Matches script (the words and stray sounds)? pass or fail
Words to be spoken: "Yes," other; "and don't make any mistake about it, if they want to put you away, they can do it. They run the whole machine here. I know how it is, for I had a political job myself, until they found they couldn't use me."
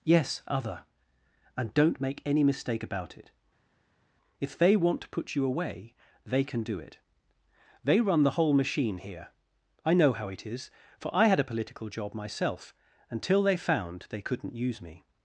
pass